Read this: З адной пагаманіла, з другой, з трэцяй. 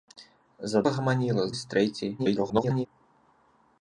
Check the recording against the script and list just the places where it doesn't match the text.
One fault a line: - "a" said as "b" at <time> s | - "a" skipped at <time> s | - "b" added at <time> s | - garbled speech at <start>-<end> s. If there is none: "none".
- "адной" skipped at 0.8 s
- "другой" skipped at 1.5 s
- garbled speech at 2.2-2.9 s